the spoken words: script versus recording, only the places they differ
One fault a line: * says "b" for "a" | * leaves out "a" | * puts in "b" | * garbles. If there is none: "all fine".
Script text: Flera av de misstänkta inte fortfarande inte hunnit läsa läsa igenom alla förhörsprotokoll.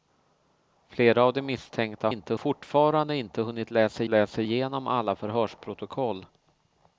all fine